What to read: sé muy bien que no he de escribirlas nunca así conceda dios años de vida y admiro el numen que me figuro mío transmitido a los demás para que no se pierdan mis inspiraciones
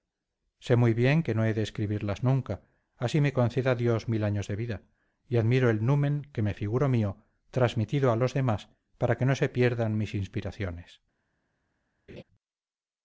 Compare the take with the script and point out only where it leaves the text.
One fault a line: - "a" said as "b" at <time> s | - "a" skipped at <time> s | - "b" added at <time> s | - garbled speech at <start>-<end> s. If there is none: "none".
- "me" added at 3.2 s
- "mil" added at 4.1 s